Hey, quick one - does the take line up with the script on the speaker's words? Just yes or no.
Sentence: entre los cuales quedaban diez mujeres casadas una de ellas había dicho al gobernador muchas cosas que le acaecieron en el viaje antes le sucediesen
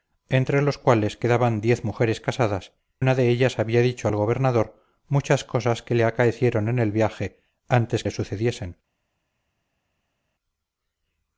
yes